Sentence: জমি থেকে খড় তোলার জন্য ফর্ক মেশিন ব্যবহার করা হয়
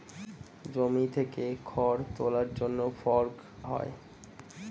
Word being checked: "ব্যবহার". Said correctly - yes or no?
no